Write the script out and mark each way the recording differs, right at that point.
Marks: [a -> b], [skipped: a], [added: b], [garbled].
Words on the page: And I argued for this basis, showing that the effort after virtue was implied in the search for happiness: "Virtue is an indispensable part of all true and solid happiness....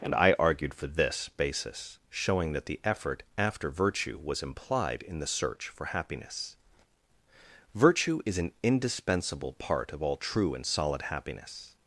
And I argued for this basis, showing that the effort after virtue was implied in the search for happiness: "Virtue is an indispensable part of all true and solid happiness....